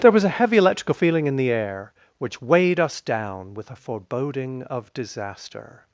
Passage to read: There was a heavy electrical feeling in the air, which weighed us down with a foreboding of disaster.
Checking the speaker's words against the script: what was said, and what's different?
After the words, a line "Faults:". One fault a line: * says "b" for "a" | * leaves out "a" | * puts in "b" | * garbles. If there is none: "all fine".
There was a heavy electrical feeling in the air, which weighed us down with a foreboding of disaster.
Faults:
all fine